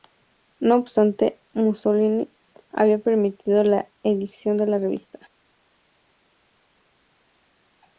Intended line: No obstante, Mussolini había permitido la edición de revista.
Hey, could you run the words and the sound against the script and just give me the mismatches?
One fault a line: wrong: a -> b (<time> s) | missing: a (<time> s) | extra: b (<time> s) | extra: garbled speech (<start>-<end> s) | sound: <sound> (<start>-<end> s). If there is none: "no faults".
extra: la (4.7 s)